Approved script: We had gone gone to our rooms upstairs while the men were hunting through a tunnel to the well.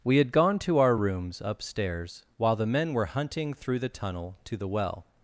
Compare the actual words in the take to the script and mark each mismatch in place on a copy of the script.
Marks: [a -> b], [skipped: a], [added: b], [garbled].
We had gone [skipped: gone] to our rooms upstairs while the men were hunting through [a -> the] tunnel to the well.